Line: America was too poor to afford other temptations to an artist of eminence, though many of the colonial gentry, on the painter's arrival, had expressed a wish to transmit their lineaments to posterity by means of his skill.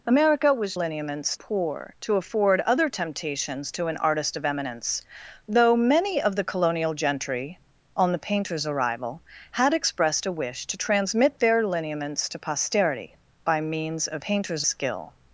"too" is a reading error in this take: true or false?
true